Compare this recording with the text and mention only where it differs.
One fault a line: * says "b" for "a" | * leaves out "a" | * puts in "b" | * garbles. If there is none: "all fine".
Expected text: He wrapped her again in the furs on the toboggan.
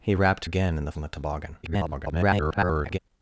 * leaves out "her"
* leaves out "furs"
* garbles